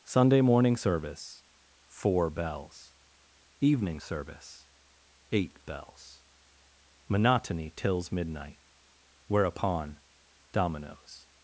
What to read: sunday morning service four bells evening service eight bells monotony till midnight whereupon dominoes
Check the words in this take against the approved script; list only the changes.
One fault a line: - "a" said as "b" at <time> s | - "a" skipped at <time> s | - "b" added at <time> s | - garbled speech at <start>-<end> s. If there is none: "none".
- "till" said as "tills" at 7.7 s